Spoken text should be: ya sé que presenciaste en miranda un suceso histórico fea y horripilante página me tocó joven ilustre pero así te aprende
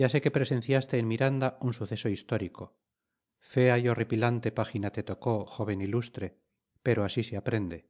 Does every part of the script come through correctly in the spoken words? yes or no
no